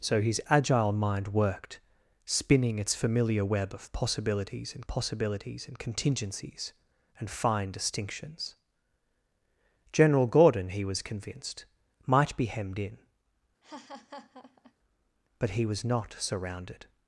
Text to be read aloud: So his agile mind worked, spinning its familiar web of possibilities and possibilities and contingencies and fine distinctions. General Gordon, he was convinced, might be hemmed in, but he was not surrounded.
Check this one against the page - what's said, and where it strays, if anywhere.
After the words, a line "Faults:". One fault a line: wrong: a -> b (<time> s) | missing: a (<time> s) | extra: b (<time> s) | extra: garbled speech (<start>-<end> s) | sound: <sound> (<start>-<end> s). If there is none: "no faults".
So his agile mind worked, spinning its familiar web of possibilities and possibilities and contingencies and fine distinctions. General Gordon, he was convinced, might be hemmed in, but he was not surrounded.
Faults:
sound: laugh (13.6-14.7 s)